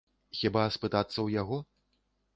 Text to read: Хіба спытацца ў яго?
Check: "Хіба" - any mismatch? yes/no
no